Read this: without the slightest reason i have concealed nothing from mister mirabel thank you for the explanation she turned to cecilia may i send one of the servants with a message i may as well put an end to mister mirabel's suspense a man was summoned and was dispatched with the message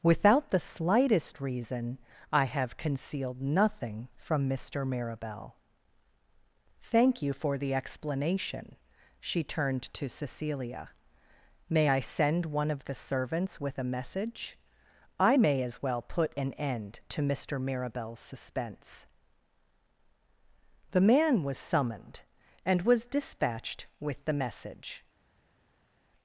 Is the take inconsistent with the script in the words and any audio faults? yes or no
yes